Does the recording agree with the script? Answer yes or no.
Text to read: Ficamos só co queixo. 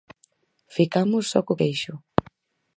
yes